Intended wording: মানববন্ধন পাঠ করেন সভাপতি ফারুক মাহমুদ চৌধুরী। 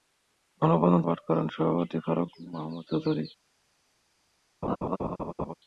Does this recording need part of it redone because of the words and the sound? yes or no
yes